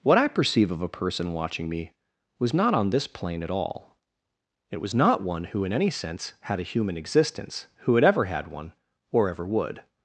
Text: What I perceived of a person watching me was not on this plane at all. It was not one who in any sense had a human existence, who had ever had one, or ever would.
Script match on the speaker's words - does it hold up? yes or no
no